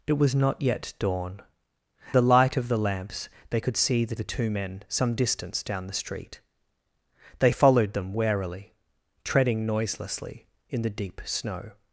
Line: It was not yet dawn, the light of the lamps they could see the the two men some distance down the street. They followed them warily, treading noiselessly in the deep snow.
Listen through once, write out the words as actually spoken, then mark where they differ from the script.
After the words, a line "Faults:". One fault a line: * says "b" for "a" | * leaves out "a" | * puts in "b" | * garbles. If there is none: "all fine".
It was not yet dawn, the light of the lamps they could see the the two men some distance down the street. They followed them warily, treading noiselessly in the deep snow.
Faults:
all fine